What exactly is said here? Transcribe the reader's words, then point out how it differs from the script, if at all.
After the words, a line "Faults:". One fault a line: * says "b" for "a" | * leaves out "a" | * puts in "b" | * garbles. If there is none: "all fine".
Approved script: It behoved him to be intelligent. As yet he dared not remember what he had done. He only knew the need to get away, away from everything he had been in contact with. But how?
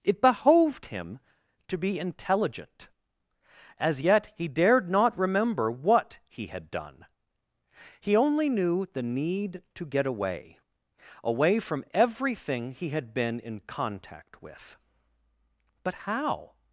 It behoved him to be intelligent. As yet he dared not remember what he had done. He only knew the need to get away, away from everything he had been in contact with. But how?
Faults:
all fine